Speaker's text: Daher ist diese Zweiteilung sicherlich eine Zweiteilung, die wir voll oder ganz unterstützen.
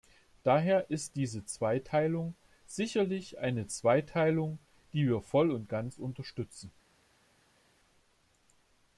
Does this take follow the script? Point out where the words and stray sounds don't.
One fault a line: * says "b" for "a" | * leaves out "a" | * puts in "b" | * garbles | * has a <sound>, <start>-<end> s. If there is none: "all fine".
* says "und" for "oder"